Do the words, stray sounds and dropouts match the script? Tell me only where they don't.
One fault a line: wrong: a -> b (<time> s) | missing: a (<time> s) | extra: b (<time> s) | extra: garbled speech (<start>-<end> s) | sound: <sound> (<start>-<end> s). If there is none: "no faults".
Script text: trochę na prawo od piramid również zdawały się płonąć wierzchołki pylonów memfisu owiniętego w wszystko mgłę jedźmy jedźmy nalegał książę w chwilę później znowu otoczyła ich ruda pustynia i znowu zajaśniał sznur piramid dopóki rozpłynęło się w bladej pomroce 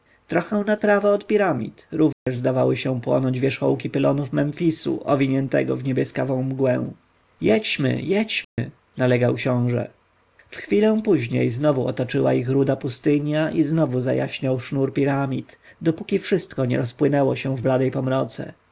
sound: dropout (2.1-2.3 s)
wrong: wszystko -> niebieskawą (5.8 s)
sound: dropout (8.4-8.6 s)
extra: wszystko nie (16.2 s)